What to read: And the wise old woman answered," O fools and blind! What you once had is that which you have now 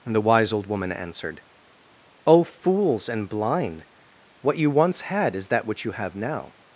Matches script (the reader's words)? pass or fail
pass